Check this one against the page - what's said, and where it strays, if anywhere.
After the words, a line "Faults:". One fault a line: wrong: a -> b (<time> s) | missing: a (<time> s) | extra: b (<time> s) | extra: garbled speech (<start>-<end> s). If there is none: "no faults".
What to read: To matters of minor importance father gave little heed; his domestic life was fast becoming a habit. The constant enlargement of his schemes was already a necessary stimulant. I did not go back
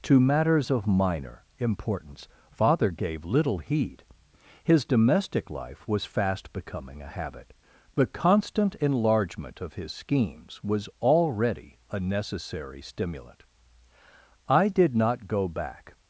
To matters of minor importance father gave little heed; his domestic life was fast becoming a habit. The constant enlargement of his schemes was already a necessary stimulant. I did not go back
Faults:
no faults